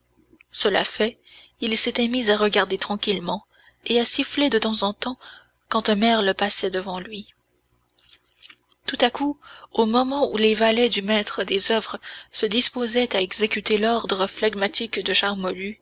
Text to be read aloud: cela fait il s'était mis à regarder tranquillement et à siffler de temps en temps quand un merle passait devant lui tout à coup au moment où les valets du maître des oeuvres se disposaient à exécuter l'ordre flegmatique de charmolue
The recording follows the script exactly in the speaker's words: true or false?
true